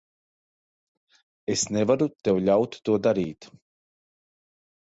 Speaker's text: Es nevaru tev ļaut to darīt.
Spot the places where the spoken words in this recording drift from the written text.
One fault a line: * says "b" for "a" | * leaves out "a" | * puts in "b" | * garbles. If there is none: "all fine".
all fine